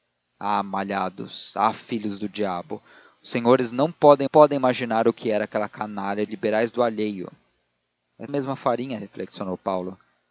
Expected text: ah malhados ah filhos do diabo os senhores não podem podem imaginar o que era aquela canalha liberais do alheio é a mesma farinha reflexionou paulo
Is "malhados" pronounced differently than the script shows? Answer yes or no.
no